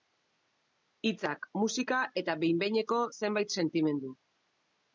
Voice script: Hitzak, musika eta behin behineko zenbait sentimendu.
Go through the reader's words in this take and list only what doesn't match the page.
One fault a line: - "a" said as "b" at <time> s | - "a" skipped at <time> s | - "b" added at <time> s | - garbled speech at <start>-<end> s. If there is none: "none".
none